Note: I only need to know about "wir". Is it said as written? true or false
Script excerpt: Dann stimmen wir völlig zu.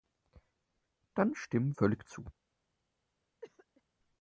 false